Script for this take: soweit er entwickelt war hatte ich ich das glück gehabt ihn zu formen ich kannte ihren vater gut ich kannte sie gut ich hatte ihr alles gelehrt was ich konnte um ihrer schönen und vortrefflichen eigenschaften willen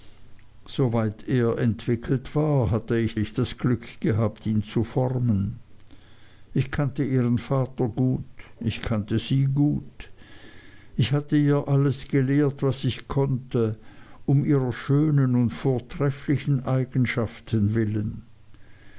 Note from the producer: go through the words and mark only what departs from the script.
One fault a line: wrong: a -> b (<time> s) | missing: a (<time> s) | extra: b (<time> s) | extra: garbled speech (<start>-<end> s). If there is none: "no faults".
no faults